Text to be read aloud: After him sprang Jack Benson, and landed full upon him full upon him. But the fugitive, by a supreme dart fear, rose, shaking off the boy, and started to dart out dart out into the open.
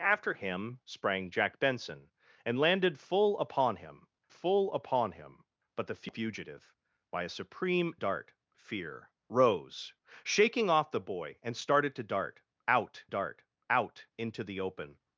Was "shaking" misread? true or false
false